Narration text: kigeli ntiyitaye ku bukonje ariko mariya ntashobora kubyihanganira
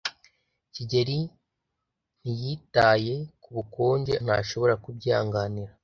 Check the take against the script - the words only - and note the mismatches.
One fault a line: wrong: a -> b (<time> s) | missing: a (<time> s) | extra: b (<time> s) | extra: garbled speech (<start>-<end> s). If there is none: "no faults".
missing: ariko mariya (4.1 s)